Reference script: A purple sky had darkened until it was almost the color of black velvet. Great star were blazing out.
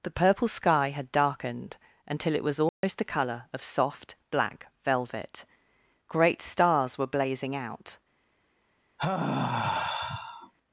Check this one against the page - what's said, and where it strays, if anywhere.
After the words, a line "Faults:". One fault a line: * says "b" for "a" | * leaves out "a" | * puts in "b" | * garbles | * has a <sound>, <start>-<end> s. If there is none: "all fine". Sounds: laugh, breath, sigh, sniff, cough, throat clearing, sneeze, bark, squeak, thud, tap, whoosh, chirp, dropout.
The purple sky had darkened until it was almost the color of soft, black velvet. Great stars were blazing out.
Faults:
* says "The" for "A"
* has a dropout, 2.7-2.8 s
* puts in "soft"
* says "stars" for "star"
* has a sigh, 9.0-10.5 s